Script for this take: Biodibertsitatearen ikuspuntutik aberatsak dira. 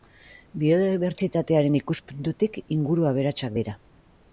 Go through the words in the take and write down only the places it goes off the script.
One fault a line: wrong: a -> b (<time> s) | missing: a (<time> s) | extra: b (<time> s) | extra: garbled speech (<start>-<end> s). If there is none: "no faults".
extra: inguru (2.8 s)